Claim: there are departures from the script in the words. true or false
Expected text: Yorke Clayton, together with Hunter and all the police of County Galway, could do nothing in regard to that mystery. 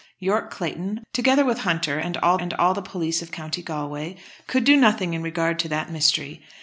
true